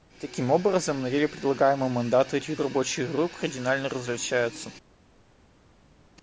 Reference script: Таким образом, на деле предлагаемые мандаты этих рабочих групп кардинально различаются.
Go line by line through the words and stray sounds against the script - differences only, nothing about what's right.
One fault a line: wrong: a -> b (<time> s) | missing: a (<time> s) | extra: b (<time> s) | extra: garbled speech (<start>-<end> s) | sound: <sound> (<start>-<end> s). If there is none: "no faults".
no faults